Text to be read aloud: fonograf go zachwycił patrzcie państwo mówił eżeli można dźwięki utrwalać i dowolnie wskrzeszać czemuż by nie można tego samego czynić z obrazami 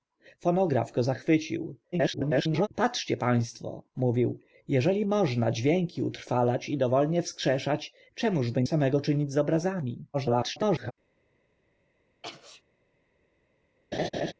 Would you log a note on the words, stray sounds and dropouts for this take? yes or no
yes